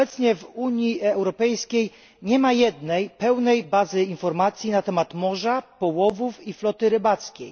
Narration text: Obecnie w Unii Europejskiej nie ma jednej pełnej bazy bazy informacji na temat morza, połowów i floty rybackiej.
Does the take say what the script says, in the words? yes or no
no